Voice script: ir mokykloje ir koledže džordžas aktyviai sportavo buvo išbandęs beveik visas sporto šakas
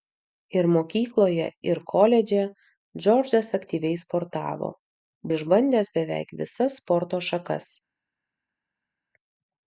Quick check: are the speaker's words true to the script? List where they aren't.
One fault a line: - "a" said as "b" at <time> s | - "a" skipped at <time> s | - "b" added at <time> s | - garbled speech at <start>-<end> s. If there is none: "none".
- "buvo" skipped at 4.7 s